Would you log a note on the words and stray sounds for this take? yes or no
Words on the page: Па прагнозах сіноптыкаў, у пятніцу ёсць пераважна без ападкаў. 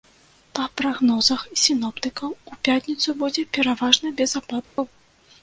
yes